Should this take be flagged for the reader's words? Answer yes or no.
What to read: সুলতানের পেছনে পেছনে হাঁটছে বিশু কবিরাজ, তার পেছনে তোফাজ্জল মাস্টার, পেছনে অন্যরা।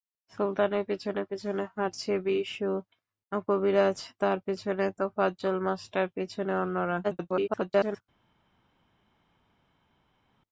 yes